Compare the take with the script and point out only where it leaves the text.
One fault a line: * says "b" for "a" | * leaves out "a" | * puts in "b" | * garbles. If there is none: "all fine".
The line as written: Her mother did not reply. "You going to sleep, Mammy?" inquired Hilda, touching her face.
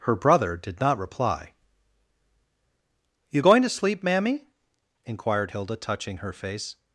* says "brother" for "mother"